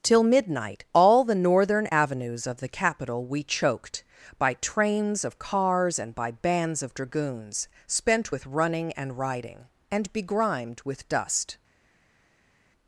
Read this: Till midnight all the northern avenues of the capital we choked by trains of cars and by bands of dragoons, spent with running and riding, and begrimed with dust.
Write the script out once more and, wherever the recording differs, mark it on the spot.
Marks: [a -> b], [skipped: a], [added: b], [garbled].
Till midnight all the northern avenues of the capital we choked by trains of cars and by bands of dragoons, spent with running and riding, and begrimed with dust.